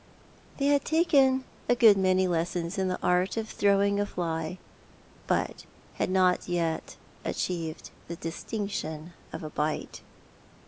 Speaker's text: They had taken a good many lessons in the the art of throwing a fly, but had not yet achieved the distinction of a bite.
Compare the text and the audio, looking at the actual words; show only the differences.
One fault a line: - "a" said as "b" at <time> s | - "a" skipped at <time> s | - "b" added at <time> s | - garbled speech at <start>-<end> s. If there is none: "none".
- "the" skipped at 3.0 s